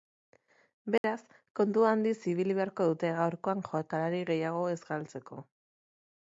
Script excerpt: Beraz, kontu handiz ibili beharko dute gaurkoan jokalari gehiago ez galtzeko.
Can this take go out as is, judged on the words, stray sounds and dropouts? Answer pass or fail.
fail